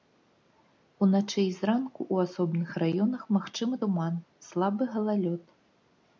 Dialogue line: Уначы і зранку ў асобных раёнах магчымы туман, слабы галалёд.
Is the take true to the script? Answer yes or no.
yes